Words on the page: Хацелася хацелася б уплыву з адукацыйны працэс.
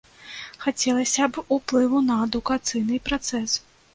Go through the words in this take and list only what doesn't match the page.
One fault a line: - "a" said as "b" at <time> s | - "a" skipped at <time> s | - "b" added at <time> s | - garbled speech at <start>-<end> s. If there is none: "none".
- "хацелася" skipped at 1.3 s
- "з" said as "на" at 2.1 s